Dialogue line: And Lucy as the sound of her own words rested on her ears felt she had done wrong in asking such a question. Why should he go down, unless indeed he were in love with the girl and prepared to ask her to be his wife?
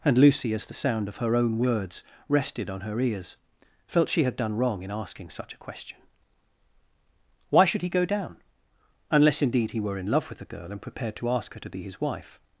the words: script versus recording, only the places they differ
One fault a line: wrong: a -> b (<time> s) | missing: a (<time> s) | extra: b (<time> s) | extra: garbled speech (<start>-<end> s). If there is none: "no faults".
no faults